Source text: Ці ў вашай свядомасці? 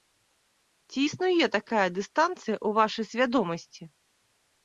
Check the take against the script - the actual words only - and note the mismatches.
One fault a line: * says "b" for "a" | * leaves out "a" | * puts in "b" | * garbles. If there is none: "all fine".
* puts in "існуе такая дыстанцыя"